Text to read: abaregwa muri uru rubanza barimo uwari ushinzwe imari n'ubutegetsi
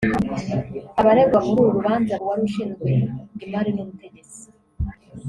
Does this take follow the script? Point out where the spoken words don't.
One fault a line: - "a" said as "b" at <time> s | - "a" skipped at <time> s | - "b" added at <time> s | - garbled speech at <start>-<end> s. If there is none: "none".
- "barimo" skipped at 2.1 s